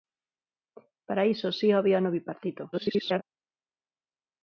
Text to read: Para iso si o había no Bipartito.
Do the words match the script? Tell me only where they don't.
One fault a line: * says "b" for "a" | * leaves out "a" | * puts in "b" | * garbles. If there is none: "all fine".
* garbles